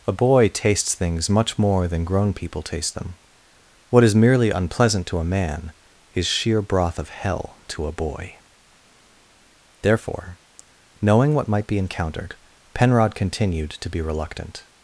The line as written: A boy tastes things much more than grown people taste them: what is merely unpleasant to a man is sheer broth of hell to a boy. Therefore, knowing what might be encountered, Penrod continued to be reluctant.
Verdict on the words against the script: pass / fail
pass